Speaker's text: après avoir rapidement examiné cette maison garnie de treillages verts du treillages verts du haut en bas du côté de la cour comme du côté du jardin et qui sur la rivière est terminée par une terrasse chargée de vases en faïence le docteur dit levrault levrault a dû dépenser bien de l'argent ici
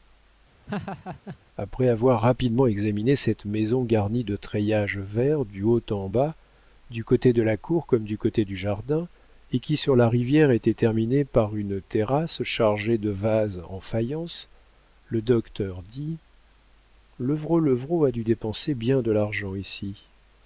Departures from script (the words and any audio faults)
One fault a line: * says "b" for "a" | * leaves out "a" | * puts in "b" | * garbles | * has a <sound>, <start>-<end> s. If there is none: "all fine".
* has a laugh, 0.7-1.4 s
* leaves out "treillages verts du"
* says "était" for "est"